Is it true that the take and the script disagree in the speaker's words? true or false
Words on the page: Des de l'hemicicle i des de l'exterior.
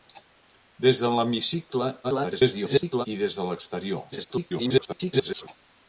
true